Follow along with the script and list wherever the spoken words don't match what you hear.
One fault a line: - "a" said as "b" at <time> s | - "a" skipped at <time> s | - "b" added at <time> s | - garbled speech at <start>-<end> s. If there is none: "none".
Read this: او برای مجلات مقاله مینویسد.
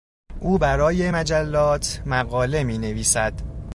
none